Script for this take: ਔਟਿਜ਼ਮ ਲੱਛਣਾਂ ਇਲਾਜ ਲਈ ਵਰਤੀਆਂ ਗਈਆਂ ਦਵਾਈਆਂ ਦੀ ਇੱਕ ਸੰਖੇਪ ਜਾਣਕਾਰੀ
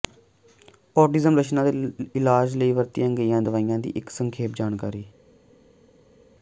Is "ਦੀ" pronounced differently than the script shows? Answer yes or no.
no